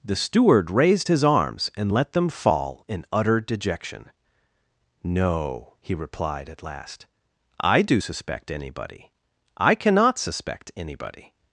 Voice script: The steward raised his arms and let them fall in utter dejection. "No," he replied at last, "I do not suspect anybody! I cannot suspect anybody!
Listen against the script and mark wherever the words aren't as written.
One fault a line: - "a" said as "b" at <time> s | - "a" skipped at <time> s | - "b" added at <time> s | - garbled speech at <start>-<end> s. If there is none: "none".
- "not" skipped at 8.0 s